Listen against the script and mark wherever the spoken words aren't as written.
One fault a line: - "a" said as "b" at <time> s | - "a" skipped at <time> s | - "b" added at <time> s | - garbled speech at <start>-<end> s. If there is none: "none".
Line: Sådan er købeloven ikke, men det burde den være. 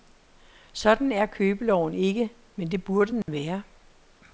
none